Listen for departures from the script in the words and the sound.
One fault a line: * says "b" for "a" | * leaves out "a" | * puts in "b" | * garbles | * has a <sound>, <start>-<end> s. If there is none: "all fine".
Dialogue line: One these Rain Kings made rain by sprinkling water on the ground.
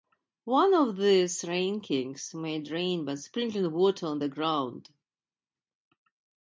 * puts in "of"